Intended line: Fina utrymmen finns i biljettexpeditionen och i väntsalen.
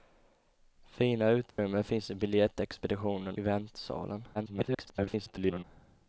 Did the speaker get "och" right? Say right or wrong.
wrong